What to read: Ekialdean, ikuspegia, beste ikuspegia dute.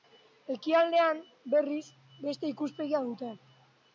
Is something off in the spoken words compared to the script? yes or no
yes